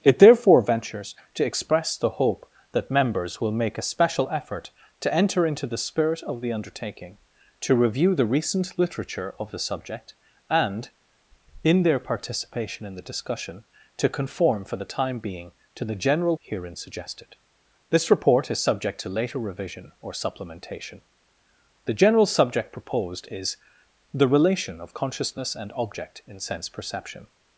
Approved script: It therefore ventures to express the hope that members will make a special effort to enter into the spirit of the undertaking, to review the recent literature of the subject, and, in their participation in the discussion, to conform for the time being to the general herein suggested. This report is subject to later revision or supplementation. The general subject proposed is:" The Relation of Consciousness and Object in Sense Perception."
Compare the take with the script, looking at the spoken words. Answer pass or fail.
pass